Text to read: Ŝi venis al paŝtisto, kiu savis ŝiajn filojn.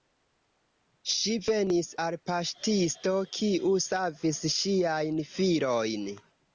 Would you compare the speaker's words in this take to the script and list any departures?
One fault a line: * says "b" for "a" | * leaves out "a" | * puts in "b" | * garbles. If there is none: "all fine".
all fine